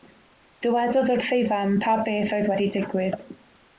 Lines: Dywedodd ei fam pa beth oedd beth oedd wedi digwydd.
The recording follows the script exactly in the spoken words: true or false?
false